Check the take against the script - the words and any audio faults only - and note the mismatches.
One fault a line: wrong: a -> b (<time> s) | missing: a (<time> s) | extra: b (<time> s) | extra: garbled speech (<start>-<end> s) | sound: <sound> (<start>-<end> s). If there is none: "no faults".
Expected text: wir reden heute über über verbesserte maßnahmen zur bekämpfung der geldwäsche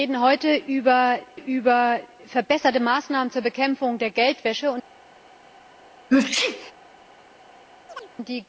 sound: sneeze (6.1-6.7 s)
sound: chirp (7.9-8.1 s)